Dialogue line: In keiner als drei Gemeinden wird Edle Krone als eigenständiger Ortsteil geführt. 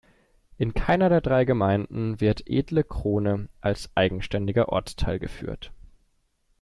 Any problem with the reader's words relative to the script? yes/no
yes